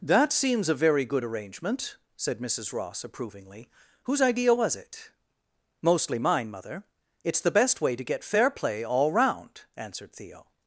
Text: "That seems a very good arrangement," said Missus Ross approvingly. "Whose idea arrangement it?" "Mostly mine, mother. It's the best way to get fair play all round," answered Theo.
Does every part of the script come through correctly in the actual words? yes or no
no